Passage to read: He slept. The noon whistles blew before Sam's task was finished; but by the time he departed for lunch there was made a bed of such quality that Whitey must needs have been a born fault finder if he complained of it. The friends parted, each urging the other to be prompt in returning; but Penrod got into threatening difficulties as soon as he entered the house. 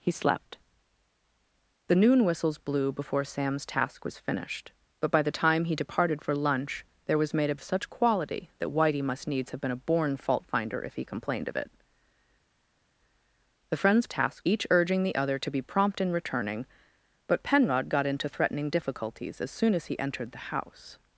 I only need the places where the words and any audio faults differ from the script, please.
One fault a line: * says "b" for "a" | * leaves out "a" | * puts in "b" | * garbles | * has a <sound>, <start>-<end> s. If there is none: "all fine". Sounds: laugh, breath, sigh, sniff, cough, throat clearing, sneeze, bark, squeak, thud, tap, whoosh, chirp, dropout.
* leaves out "bed"
* says "task" for "parted"